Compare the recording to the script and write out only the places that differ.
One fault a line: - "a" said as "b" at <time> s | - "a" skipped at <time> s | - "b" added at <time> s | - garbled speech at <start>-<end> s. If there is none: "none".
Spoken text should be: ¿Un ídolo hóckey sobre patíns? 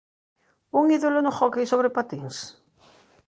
- "no" added at 1.2 s